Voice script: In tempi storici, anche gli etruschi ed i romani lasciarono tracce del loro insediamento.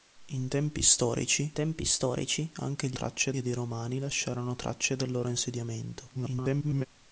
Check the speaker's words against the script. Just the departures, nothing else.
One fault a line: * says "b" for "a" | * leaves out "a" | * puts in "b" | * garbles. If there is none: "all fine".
* puts in "tempi storici"
* says "tracce" for "etruschi"
* garbles